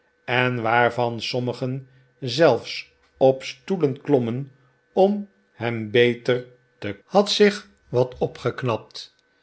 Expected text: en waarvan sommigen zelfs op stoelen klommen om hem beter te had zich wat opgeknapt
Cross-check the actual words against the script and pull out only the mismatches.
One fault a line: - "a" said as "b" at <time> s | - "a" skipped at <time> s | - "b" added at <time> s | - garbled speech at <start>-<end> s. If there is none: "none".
none